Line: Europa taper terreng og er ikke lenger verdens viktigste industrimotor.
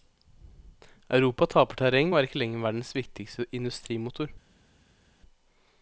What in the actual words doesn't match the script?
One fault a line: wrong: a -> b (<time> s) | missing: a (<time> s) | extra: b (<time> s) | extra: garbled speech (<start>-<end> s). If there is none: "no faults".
no faults